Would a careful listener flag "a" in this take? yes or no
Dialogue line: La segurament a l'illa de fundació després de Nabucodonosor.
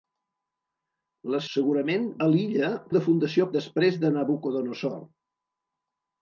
no